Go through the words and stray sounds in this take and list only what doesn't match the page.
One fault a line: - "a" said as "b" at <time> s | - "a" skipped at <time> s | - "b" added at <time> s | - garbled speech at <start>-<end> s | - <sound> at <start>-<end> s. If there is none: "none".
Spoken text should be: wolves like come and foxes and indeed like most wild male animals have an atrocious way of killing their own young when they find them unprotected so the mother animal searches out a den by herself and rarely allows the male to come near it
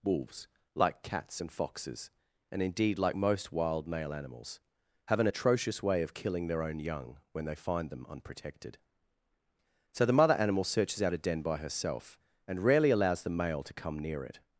- "come" said as "cats" at 1.0 s